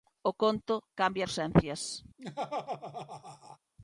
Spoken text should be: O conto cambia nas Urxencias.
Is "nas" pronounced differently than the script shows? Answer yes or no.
yes